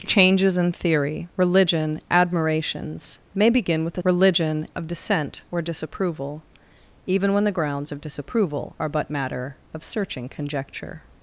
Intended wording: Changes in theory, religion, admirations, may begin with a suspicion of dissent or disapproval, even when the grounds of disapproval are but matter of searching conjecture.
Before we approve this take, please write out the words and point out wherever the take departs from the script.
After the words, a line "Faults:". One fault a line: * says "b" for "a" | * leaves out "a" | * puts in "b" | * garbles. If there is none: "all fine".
Changes in theory, religion, admirations, may begin with a religion of dissent or disapproval, even when the grounds of disapproval are but matter of searching conjecture.
Faults:
* says "religion" for "suspicion"